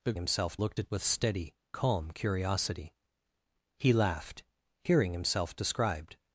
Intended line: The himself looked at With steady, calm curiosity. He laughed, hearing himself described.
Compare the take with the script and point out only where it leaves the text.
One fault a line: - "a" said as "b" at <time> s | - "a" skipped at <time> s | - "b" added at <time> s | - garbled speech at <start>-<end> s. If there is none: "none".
none